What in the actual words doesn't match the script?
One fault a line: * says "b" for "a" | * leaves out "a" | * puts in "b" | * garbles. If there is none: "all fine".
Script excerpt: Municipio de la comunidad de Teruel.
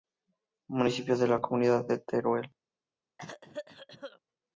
all fine